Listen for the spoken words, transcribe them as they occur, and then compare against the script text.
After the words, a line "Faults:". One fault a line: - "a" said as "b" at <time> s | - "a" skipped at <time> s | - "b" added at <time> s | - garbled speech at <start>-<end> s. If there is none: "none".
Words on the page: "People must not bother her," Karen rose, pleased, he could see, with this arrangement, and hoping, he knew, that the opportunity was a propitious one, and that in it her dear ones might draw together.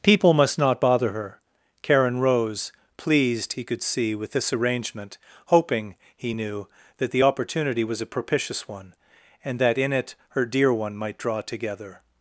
"People must not bother her," Karen rose, pleased, he could see, with this arrangement, hoping, he knew, that the opportunity was a propitious one, and that in it her dear one might draw together.
Faults:
- "and" skipped at 5.2 s
- "ones" said as "one" at 10.7 s